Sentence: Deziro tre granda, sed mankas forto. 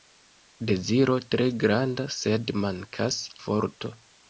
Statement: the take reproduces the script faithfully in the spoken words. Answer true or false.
true